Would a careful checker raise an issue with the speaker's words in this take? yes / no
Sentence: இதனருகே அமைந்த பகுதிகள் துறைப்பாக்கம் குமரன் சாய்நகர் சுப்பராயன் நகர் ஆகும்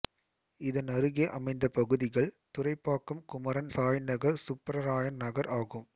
no